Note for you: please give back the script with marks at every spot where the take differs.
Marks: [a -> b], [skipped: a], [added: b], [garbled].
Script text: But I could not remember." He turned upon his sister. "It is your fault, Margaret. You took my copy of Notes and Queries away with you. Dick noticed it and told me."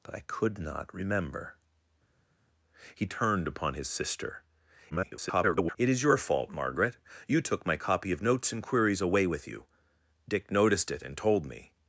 But I could not remember." He turned upon his sister. [garbled] "It is your fault, Margaret. You took my copy of Notes and Queries away with you. Dick noticed it and told me."